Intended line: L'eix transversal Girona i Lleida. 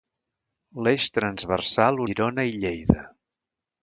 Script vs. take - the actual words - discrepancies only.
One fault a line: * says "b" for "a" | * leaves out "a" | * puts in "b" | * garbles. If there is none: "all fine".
all fine